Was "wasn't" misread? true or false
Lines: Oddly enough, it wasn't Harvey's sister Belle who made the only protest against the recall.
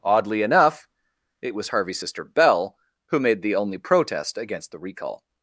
true